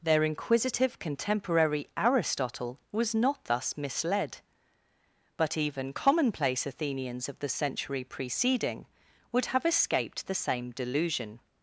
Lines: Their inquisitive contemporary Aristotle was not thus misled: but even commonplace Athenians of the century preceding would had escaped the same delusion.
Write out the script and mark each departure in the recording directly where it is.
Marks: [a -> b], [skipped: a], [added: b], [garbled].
Their inquisitive contemporary Aristotle was not thus misled: but even commonplace Athenians of the century preceding would [had -> have] escaped the same delusion.